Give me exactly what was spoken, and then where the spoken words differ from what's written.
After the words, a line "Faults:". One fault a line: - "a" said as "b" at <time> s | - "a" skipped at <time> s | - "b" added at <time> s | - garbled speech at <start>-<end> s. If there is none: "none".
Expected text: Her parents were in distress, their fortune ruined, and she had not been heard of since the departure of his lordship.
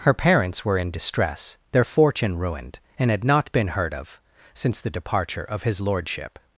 Her parents were in distress, their fortune ruined, and had not been heard of since the departure of his lordship.
Faults:
- "she" skipped at 3.1 s